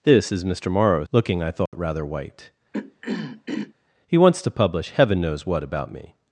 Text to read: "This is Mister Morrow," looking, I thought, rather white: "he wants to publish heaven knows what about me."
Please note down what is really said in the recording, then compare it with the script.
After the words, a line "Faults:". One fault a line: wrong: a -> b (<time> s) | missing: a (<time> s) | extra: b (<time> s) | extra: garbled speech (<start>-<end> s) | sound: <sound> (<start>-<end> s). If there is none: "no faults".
"This is Mister Morrow," looking, I thought, rather white: "he wants to publish heaven knows what about me."
Faults:
sound: dropout (1.7-1.7 s)
sound: throat clearing (2.7-3.7 s)